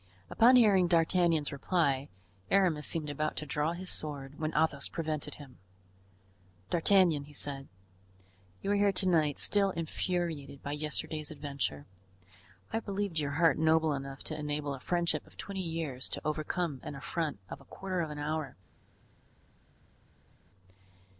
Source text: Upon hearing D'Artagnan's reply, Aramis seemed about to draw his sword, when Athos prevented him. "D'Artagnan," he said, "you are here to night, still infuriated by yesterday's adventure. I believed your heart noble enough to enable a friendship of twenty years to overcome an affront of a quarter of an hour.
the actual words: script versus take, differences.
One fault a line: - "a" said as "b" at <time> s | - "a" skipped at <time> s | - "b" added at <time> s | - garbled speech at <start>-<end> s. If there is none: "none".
none